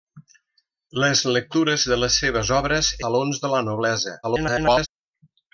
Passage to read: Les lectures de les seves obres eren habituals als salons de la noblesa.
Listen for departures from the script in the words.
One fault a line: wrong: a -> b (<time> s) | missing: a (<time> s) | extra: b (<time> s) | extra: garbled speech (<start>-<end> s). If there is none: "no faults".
missing: eren habituals als (2.9 s)
extra: garbled speech (4.2-4.9 s)